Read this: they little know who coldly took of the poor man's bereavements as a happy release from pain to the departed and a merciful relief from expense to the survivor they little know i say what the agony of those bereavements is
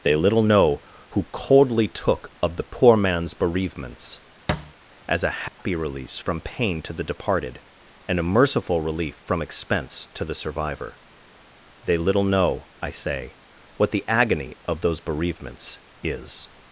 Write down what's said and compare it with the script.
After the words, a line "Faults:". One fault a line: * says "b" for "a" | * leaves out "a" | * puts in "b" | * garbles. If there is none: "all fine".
they little know who coldly took of the poor man's bereavements as a happy release from pain to the departed and a merciful relief from expense to the survivor they little know i say what the agony of those bereavements is
Faults:
all fine